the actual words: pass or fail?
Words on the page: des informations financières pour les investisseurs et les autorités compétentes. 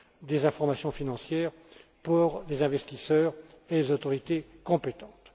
pass